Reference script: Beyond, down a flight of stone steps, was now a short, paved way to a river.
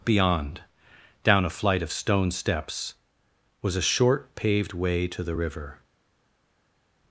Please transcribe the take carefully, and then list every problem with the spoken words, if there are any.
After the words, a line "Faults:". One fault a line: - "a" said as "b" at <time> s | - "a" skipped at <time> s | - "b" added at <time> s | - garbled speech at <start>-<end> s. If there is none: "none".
Beyond, down a flight of stone steps, was a short, paved way to the river.
Faults:
- "now" skipped at 3.8 s
- "a" said as "the" at 5.2 s